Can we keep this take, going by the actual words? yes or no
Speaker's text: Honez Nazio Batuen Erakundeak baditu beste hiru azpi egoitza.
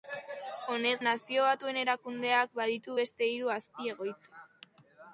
yes